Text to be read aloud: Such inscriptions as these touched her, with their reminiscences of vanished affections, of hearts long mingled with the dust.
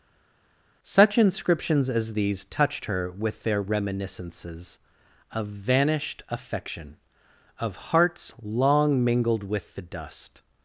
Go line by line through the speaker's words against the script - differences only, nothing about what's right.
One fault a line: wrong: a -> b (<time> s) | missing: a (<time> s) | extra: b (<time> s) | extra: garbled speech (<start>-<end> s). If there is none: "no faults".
wrong: affections -> affection (6.3 s)